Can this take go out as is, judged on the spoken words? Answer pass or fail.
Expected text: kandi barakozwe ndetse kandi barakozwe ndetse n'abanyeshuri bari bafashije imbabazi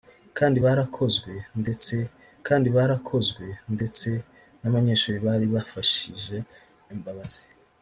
pass